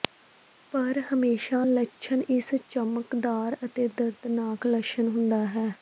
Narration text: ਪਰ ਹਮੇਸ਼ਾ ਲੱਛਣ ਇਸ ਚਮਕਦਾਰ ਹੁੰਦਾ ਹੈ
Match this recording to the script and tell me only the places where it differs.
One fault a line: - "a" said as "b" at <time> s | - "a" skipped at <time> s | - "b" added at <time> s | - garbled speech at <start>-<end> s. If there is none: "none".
- "ਅਤੇ ਦਰਦਨਾਕ ਲੱਛਣ" added at 3.6 s